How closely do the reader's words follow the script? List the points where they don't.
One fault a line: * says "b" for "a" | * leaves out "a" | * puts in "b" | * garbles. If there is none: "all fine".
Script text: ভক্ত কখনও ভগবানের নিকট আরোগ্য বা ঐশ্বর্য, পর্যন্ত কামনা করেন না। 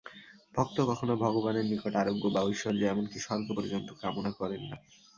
* puts in "এমন কি স্বর্গ"